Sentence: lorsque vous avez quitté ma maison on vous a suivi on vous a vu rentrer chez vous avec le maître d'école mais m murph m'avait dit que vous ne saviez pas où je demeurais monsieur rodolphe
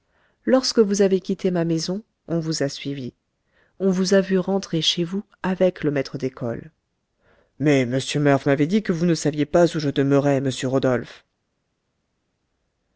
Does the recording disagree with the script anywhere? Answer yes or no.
no